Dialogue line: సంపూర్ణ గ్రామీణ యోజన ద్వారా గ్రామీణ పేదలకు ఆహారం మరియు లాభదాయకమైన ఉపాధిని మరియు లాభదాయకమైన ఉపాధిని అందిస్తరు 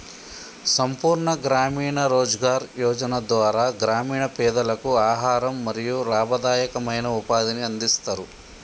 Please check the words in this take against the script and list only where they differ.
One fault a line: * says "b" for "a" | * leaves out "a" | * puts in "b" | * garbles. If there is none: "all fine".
* puts in "రోజ్గార్"
* leaves out "మరియు లాభదాయకమైన ఉపాధిని"